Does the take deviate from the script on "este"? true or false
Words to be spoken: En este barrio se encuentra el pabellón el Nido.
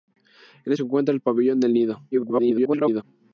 true